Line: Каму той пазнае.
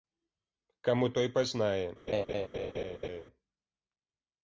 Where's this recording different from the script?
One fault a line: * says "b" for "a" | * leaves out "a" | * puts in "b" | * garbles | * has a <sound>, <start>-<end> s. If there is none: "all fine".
* has a laugh, 2.1-3.2 s